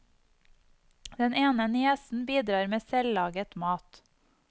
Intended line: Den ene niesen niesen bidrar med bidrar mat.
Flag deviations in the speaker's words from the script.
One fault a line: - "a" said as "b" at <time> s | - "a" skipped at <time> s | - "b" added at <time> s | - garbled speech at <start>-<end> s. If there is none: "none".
- "niesen" skipped at 2.2 s
- "bidrar" said as "selvlaget" at 2.9 s